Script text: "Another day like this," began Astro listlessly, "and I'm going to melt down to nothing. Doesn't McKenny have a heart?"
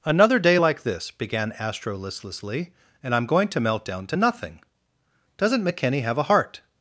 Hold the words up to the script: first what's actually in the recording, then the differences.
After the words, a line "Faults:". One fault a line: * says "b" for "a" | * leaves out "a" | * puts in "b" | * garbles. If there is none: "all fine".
"Another day like this," began Astro listlessly, "and I'm going to melt down to nothing. Doesn't McKenny have a heart?"
Faults:
all fine